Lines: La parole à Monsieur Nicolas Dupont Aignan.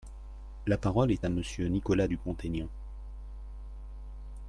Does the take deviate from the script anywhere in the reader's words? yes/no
yes